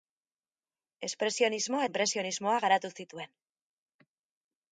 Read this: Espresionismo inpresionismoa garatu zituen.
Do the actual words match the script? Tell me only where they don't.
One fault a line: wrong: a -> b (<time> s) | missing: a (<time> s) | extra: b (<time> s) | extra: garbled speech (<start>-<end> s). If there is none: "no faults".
no faults